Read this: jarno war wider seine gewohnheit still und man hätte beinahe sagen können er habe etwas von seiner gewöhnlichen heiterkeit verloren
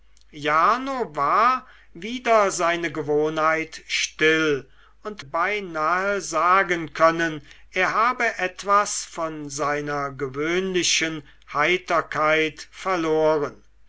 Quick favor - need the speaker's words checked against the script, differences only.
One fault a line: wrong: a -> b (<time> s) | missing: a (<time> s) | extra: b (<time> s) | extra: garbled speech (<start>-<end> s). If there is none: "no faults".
missing: man hätte (5.2 s)